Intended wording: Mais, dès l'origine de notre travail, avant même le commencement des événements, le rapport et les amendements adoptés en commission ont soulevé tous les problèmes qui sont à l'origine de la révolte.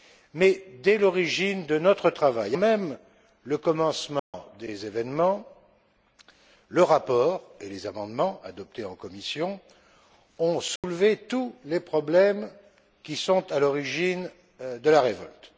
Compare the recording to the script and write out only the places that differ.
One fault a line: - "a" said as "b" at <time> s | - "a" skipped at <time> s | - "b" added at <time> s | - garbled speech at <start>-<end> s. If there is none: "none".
- "avant" skipped at 2.5 s